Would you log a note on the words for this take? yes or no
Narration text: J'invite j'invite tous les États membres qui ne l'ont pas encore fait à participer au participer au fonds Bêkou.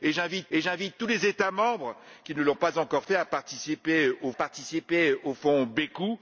no